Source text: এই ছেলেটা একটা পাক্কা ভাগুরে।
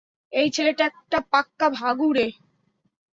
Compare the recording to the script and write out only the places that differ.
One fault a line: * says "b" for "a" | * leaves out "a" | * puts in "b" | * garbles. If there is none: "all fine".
all fine